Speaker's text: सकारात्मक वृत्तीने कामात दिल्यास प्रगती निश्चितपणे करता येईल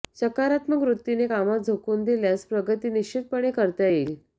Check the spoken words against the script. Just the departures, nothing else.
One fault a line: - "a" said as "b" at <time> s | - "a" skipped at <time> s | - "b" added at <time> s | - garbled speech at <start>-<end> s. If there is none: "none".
- "झोकून" added at 1.6 s